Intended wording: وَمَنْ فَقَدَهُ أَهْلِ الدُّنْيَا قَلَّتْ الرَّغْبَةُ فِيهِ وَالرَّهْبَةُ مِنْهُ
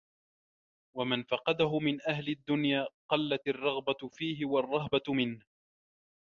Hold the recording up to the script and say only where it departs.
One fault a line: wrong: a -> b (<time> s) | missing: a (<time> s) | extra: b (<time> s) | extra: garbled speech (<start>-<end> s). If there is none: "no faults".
extra: مِنْ (1.8 s)